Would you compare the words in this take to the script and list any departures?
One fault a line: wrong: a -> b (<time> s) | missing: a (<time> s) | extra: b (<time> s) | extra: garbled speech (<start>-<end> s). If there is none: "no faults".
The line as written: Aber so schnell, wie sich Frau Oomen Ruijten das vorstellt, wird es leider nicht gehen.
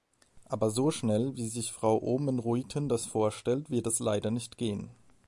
no faults